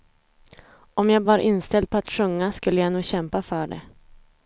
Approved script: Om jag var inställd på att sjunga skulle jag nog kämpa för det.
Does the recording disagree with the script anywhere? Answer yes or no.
no